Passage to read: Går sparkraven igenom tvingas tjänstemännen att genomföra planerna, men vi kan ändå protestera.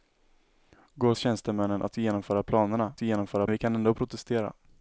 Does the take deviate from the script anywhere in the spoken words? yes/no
yes